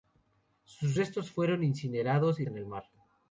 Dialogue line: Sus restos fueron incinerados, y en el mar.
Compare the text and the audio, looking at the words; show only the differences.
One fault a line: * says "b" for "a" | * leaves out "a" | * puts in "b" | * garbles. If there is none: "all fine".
all fine